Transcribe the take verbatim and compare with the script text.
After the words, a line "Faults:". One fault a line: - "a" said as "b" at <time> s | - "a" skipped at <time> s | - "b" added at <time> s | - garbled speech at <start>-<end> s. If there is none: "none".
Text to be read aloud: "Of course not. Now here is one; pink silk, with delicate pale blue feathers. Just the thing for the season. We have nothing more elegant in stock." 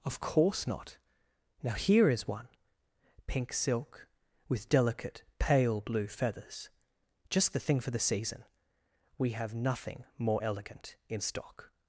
"Of course not. Now here is one; pink silk, with delicate pale blue feathers. Just the thing for the season. We have nothing more elegant in stock."
Faults:
none